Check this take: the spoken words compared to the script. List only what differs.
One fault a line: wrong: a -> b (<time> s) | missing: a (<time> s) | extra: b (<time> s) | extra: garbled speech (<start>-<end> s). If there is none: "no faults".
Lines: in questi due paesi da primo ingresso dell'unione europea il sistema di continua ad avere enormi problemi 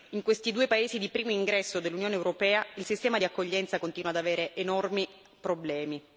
wrong: da -> di (1.0 s)
extra: accoglienza (3.2 s)